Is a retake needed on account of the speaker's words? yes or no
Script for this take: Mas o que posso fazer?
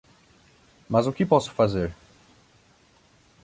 no